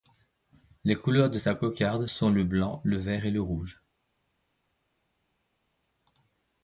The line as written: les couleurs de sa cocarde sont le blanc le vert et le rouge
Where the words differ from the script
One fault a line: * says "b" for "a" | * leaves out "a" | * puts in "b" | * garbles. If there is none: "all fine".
all fine